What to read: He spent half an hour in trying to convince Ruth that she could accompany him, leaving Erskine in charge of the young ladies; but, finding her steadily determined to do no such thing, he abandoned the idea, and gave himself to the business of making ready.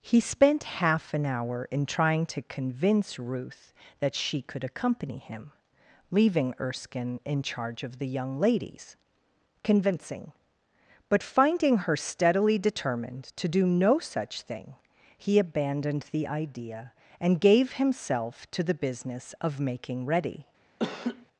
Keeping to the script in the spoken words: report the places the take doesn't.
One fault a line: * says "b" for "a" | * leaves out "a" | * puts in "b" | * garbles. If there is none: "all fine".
* puts in "convincing"